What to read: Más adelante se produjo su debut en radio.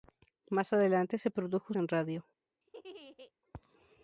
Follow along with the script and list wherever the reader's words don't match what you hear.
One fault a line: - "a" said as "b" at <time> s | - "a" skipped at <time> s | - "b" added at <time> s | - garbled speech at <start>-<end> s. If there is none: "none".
- "su debut" skipped at 1.7 s